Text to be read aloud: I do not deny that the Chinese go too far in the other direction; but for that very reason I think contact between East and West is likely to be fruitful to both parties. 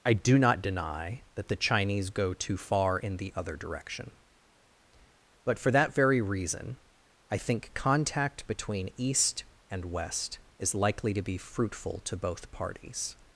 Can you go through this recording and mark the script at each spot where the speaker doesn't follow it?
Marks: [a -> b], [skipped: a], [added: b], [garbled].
I do not deny that the Chinese go too far in the other direction; but for that very reason I think contact between East and West is likely to be fruitful to both parties.